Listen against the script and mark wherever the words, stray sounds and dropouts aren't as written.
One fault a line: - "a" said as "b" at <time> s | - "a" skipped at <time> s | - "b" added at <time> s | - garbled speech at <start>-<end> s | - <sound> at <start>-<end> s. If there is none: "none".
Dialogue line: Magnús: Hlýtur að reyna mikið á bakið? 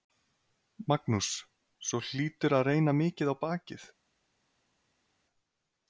- "Svo" added at 1.9 s